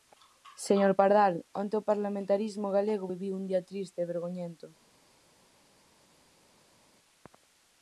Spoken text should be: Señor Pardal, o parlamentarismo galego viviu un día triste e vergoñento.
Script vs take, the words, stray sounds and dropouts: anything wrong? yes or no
yes